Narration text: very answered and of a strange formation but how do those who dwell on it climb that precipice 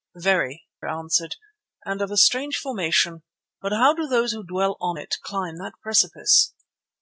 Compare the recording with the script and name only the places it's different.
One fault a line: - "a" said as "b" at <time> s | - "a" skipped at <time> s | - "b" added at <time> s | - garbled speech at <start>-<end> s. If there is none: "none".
none